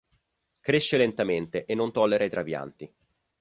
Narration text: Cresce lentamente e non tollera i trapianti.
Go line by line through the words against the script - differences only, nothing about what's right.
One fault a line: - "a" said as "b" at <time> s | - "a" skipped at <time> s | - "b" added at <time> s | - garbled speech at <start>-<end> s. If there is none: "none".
none